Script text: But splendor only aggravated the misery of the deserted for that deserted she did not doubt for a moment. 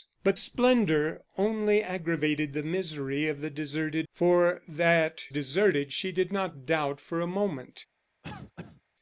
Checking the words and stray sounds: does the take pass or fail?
fail